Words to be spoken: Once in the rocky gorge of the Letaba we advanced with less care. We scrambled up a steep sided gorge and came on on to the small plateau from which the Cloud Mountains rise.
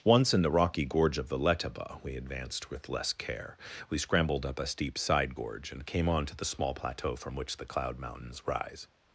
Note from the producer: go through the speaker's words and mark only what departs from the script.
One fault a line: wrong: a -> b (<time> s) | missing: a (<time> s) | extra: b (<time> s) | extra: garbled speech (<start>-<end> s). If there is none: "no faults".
wrong: sided -> side (5.0 s)
missing: on (6.3 s)